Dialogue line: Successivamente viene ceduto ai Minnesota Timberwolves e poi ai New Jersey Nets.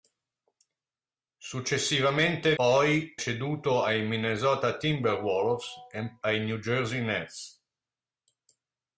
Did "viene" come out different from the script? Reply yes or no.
yes